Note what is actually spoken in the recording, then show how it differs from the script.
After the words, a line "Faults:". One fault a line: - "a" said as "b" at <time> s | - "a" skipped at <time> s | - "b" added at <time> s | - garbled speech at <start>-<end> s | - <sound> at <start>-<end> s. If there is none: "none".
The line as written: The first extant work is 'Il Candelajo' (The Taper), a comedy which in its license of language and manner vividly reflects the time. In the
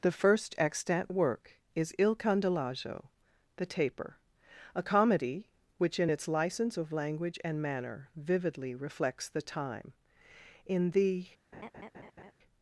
The first extant work is 'Il Candelajo' (The Taper), a comedy which in its license of language and manner vividly reflects the time. In the
Faults:
- laugh at 11.5-12.3 s